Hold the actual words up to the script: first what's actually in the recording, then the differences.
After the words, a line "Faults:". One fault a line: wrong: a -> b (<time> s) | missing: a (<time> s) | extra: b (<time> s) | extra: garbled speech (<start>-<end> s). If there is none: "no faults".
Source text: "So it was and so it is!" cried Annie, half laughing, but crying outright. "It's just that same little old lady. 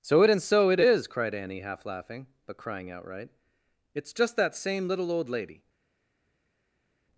"So it and so it is!" cried Annie, half laughing, but crying outright. "It's just that same little old lady.
Faults:
missing: was (0.3 s)